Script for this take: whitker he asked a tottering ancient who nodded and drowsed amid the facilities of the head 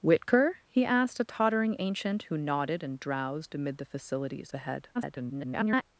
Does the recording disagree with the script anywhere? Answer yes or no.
yes